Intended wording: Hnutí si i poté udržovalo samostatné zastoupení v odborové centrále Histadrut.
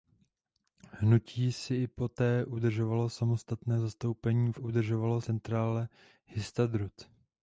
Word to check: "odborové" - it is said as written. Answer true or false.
false